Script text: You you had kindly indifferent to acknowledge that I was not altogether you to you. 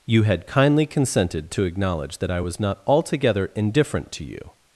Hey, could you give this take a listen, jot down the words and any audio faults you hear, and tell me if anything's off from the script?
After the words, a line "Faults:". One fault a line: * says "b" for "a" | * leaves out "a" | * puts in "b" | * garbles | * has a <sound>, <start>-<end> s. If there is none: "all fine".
You had kindly consented to acknowledge that I was not altogether indifferent to you.
Faults:
* leaves out "you"
* says "consented" for "indifferent"
* says "indifferent" for "you"